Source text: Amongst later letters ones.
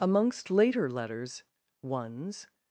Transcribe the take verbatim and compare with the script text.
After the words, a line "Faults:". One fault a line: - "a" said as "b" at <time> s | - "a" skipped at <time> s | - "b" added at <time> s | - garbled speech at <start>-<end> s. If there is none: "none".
Amongst later letters ones.
Faults:
none